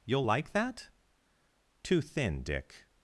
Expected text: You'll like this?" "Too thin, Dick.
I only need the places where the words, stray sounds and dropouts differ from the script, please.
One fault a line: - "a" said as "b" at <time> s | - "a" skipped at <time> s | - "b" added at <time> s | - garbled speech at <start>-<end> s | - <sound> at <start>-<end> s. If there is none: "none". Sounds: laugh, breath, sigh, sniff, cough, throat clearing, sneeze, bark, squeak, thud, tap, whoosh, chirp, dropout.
- "this" said as "that" at 0.5 s